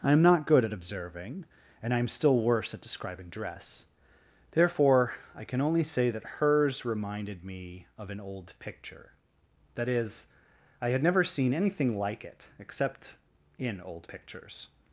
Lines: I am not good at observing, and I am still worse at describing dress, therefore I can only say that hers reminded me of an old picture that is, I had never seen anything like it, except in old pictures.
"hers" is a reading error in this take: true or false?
false